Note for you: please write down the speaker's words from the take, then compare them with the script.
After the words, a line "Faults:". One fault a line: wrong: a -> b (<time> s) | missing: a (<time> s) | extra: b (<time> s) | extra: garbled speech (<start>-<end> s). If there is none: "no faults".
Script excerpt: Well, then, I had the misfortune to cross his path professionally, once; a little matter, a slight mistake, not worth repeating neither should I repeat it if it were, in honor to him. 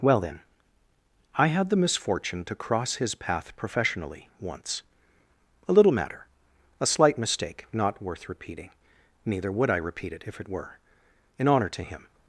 Well, then, I had the misfortune to cross his path professionally, once; a little matter, a slight mistake, not worth repeating neither would I repeat it if it were, in honor to him.
Faults:
wrong: should -> would (9.5 s)